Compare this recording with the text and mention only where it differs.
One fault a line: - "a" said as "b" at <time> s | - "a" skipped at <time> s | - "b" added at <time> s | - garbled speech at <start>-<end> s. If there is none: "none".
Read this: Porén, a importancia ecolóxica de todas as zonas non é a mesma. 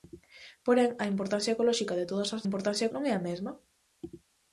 - "zonas" said as "importancia" at 2.5 s